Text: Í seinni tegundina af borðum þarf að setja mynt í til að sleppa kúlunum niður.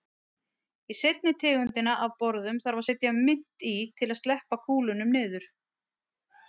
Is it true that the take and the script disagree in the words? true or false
false